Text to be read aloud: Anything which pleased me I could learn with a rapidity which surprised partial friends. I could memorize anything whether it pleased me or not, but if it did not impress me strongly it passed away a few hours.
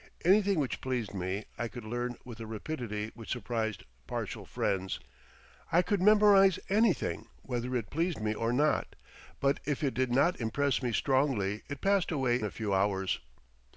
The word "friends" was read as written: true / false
true